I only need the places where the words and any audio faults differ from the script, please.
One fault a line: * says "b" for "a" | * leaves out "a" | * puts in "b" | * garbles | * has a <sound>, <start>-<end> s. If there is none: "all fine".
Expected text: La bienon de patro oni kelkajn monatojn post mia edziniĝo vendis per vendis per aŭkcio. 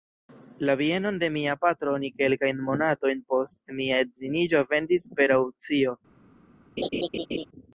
* puts in "mia"
* leaves out "vendis per"
* has a laugh, 6.8-7.5 s